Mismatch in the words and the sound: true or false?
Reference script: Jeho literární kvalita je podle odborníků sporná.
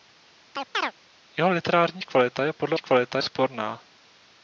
true